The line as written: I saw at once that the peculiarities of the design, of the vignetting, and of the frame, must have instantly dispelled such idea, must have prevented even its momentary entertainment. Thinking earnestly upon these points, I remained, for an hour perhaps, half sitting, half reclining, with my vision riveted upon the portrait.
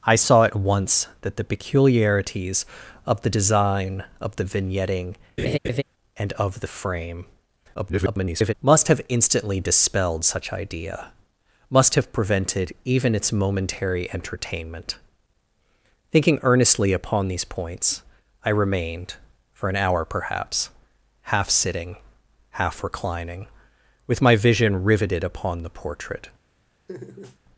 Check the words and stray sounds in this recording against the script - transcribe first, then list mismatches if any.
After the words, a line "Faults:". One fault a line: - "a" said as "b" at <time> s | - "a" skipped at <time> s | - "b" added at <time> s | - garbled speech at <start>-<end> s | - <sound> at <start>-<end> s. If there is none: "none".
I saw at once that the peculiarities of the design, of the vignetting, and of the frame, [garbled] must have instantly dispelled such idea, must have prevented even its momentary entertainment. Thinking earnestly upon these points, I remained, for an hour perhaps, half sitting, half reclining, with my vision riveted upon the portrait.
Faults:
- laugh at 5.4-5.8 s
- garbled speech at 7.7-8.5 s
- laugh at 26.9-27.4 s